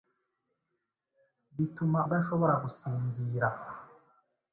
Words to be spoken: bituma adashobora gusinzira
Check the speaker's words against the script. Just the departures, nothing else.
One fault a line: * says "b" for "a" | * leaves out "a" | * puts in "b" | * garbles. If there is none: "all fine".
all fine